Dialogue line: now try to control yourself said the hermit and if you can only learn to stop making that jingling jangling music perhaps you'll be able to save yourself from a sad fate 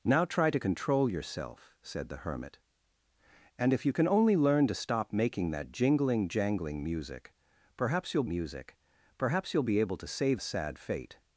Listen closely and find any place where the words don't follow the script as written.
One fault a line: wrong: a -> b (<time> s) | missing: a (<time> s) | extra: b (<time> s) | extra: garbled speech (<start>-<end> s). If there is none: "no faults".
extra: music perhaps you'll (8.3 s)
missing: yourself from (10.4 s)